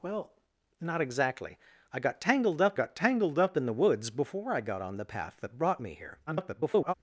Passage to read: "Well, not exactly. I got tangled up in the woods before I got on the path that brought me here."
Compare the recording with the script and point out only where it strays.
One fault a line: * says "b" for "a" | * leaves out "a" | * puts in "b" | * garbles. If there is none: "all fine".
* puts in "got tangled up"
* garbles